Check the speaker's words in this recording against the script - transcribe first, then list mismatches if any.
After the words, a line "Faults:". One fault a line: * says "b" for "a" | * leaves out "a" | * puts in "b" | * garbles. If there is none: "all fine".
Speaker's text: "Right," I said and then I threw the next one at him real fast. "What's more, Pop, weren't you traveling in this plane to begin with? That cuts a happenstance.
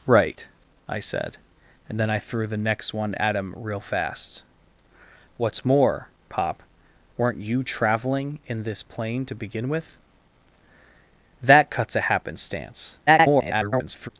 "Right," I said and then I threw the next one at him real fast. "What's more, Pop, weren't you traveling in this plane to begin with? That cuts a happenstance. [garbled]
Faults:
* garbles